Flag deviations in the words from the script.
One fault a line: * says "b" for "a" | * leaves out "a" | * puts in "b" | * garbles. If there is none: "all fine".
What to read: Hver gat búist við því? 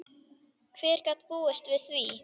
all fine